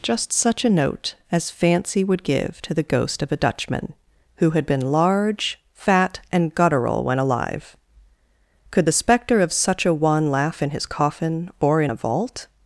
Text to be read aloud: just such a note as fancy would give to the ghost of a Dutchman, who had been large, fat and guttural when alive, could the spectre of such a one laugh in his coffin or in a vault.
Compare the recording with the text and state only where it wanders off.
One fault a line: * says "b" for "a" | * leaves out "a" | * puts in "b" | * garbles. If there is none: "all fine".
all fine